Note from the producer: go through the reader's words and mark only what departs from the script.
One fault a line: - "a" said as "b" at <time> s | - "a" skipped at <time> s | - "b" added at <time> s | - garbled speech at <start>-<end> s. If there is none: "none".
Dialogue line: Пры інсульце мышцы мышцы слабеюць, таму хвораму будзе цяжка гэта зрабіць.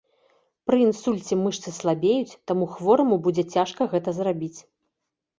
- "мышцы" skipped at 1.7 s